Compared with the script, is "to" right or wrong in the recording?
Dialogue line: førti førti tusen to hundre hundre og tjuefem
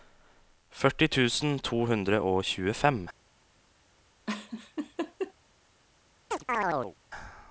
right